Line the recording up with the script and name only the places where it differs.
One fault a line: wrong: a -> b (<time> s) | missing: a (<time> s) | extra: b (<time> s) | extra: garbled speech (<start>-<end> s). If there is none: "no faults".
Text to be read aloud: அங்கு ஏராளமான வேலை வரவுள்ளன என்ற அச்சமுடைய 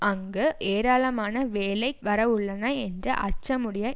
no faults